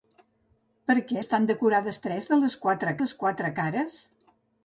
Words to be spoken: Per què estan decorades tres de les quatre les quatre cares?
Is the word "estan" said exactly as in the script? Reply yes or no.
yes